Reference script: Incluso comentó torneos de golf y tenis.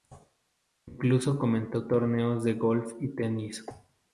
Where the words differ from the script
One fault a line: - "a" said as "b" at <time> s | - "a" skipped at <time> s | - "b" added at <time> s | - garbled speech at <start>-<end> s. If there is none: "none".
none